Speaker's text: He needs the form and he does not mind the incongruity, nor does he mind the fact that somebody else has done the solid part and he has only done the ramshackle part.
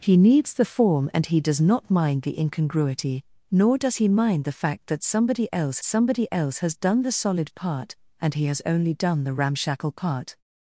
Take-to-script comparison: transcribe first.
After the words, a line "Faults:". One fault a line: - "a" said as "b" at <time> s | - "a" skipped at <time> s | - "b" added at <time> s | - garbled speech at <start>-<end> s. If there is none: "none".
He needs the form and he does not mind the incongruity, nor does he mind the fact that somebody else somebody else has done the solid part and he has only done the ramshackle part.
Faults:
- "somebody else" added at 5.8 s